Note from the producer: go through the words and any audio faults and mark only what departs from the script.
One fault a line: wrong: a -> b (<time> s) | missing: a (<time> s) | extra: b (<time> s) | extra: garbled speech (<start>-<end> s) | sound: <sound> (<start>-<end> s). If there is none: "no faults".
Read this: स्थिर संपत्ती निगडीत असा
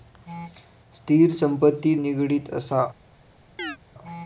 sound: chirp (3.6-3.8 s)